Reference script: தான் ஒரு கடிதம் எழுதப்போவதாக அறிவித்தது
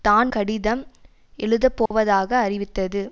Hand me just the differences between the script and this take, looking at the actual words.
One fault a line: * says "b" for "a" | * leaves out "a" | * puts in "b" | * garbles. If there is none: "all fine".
* leaves out "ஒரு"